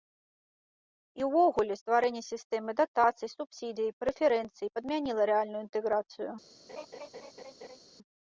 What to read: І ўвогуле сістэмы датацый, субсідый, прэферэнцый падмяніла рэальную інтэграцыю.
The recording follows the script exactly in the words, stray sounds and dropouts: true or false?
false